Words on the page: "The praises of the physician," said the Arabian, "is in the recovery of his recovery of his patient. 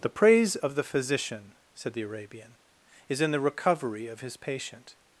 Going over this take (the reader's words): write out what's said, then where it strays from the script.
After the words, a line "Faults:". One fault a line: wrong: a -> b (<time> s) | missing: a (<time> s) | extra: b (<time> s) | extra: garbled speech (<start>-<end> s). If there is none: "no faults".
"The praise of the physician," said the Arabian, "is in the recovery of his patient.
Faults:
wrong: praises -> praise (0.1 s)
missing: recovery of his (4.3 s)